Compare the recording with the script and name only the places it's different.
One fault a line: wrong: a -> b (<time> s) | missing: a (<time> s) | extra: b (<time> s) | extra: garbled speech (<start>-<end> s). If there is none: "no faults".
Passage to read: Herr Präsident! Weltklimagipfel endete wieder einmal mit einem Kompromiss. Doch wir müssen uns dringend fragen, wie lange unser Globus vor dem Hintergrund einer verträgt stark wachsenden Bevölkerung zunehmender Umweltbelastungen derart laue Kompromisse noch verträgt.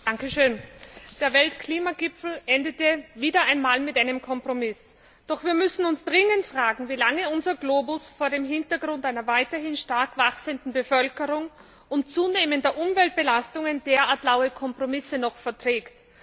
extra: Der (1.2 s)
wrong: verträgt -> weiterhin (9.3 s)
extra: und (11.9 s)